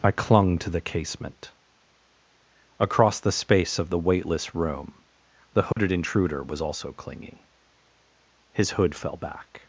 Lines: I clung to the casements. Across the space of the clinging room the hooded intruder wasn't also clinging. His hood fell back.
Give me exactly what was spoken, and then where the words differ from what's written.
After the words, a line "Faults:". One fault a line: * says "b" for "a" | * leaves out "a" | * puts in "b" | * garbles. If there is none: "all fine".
I clung to the casement. Across the space of the weightless room the hooded intruder was also clinging. His hood fell back.
Faults:
* says "casement" for "casements"
* says "weightless" for "clinging"
* says "was" for "wasn't"